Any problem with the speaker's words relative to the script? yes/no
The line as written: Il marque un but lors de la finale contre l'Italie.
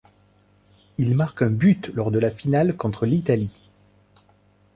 no